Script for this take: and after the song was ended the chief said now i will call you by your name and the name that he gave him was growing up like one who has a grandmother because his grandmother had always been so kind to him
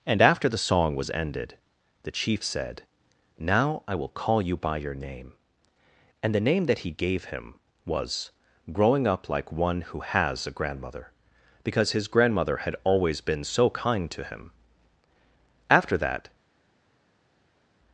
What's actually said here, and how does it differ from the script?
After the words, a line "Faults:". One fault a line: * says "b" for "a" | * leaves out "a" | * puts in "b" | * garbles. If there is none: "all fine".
and after the song was ended the chief said now i will call you by your name and the name that he gave him was growing up like one who has a grandmother because his grandmother had always been so kind to him after that
Faults:
* puts in "after that"